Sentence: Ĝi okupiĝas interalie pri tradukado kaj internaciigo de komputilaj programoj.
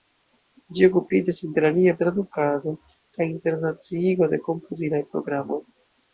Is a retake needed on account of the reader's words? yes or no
yes